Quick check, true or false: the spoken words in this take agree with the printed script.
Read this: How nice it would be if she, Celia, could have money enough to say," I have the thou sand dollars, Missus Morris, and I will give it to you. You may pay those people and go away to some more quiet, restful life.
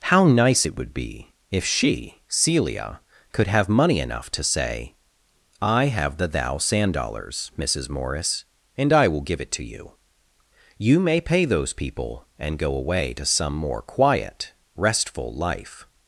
true